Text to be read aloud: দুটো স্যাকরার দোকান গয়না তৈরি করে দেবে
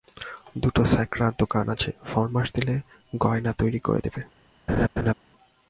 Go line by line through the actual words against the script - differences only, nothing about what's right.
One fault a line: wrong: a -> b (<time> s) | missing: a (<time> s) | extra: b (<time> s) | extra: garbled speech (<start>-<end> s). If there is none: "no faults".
extra: আছে ফরমাশ দিলে (1.7 s)